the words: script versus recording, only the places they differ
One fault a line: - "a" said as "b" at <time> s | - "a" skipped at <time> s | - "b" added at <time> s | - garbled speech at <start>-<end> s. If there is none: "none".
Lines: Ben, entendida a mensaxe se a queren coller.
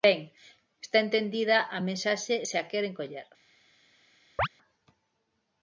- "está" added at 0.8 s